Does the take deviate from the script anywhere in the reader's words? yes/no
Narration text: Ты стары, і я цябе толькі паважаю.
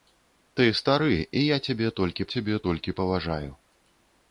yes